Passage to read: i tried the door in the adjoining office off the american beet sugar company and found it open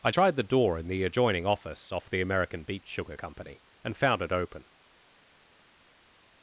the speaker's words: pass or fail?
pass